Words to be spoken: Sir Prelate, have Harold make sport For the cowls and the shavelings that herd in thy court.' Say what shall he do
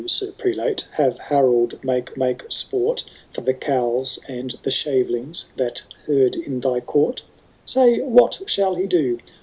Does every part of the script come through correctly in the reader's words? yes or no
no